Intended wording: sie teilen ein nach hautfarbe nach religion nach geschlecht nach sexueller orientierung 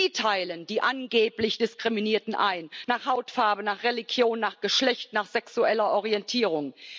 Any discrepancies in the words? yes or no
yes